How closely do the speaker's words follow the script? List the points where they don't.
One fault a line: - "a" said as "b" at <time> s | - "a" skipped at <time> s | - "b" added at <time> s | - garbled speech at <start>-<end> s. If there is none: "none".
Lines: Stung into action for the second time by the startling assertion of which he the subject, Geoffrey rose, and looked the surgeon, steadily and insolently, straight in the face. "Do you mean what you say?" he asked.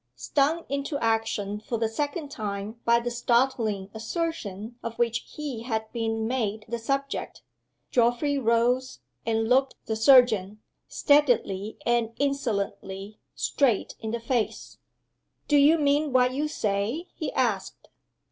- "had been made" added at 5.6 s